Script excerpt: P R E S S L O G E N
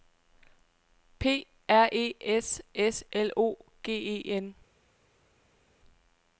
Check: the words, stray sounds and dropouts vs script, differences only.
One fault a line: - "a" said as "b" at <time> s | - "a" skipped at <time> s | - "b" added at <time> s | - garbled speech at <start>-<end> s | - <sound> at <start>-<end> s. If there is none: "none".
none